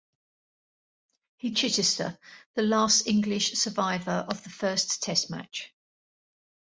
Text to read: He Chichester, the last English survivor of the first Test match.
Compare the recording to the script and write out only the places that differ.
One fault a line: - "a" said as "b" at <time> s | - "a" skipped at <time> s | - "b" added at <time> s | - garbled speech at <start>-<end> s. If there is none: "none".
none